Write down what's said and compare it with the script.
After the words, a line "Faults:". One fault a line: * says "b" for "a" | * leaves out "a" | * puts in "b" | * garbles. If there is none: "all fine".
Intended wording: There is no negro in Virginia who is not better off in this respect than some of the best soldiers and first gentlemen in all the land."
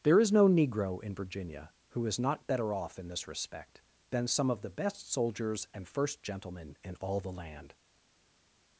There is no negro in Virginia who is not better off in this respect than some of the best soldiers and first gentlemen in all the land."
Faults:
all fine